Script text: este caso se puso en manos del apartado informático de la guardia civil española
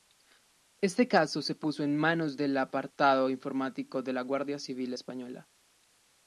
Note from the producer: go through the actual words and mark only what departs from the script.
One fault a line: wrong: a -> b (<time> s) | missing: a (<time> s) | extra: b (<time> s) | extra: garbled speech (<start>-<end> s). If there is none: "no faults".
no faults